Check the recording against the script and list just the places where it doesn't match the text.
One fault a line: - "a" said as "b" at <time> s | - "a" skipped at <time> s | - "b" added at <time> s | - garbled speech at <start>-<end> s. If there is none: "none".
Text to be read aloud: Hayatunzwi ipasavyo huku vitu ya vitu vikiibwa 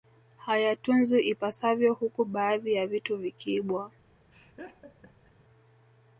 - "vitu" said as "baadhi" at 2.3 s